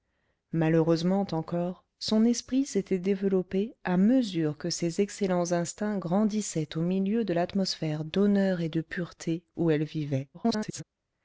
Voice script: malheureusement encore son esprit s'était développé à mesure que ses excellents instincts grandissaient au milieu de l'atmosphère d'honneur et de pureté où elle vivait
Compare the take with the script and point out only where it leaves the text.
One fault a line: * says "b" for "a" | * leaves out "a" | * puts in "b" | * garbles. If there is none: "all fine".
* garbles